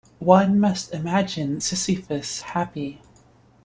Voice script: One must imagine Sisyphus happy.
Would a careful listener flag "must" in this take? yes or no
no